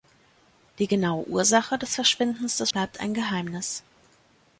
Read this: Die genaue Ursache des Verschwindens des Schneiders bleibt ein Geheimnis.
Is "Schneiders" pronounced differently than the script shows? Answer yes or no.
yes